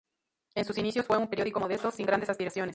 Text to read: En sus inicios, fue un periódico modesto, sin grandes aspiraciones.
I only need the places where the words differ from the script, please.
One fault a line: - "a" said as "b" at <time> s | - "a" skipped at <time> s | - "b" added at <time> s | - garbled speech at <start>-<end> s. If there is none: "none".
none